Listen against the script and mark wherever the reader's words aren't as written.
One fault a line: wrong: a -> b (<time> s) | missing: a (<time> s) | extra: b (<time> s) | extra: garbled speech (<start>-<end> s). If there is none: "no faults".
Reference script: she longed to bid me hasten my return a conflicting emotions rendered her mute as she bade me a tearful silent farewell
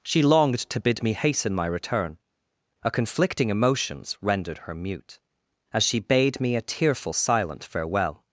no faults